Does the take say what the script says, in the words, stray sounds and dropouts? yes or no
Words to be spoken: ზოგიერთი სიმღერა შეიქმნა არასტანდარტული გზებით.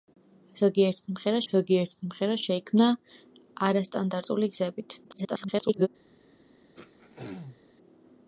no